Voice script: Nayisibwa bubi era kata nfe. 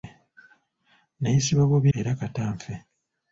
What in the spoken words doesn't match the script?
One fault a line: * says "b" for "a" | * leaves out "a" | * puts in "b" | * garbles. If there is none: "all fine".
all fine